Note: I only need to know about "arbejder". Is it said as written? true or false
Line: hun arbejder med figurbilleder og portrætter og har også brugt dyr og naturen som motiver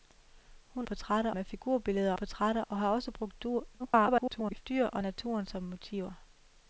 false